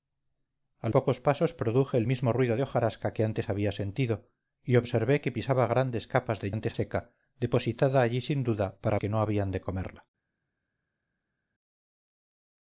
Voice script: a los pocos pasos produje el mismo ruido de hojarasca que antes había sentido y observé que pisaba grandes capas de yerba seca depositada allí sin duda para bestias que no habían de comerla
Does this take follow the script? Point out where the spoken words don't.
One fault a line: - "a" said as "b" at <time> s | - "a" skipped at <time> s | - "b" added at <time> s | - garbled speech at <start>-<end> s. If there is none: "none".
- "los" skipped at 0.9 s
- "yerba" said as "antes" at 6.5 s
- "bestias" skipped at 9.0 s